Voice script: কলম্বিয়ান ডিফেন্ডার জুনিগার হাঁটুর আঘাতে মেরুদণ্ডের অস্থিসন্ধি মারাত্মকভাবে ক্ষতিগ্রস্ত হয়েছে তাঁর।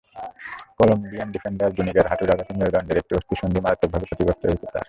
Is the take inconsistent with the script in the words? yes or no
yes